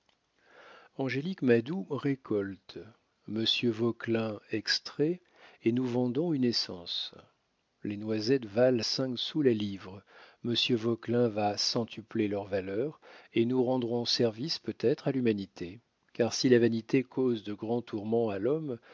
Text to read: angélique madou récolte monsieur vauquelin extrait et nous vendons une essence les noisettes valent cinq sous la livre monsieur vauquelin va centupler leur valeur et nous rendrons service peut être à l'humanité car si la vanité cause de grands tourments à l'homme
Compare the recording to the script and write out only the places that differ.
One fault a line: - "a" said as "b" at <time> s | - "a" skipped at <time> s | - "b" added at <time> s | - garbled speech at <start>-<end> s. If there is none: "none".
none